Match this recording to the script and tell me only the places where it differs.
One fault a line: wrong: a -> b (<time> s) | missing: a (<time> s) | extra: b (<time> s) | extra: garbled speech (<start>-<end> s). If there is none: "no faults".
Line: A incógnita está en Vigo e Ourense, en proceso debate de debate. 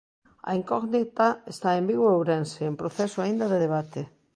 wrong: debate -> aínda (3.2 s)